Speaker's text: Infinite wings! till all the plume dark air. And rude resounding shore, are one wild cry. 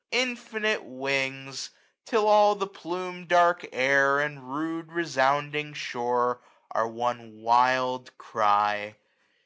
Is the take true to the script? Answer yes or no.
yes